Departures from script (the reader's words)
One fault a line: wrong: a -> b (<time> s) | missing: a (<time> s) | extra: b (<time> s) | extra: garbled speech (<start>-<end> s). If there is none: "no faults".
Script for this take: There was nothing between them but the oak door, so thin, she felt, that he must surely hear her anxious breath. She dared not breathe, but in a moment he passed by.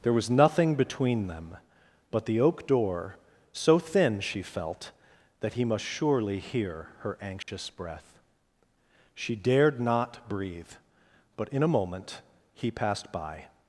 no faults